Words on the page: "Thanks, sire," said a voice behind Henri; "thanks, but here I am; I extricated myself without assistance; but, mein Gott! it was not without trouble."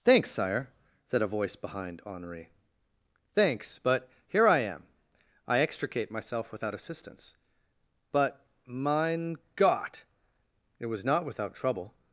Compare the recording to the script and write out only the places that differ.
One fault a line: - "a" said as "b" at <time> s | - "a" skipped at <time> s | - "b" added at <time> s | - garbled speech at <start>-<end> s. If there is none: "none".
- "extricated" said as "extricate" at 5.6 s